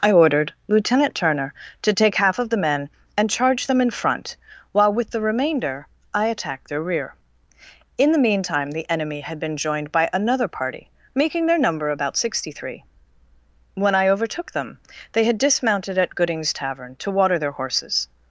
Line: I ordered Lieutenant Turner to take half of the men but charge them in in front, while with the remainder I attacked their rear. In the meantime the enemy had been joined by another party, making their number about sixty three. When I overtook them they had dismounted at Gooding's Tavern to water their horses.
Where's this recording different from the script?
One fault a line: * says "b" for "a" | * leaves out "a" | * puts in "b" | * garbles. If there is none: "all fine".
* says "and" for "but"
* leaves out "in"